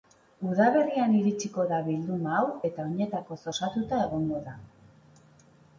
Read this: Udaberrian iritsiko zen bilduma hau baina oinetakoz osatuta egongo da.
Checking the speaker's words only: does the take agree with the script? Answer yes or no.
no